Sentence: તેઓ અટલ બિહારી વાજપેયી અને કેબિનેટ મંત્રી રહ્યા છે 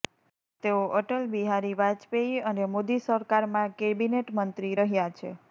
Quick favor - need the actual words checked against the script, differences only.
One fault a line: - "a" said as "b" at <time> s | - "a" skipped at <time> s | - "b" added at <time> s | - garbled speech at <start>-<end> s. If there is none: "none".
- "મોદી સરકારમાં" added at 2.7 s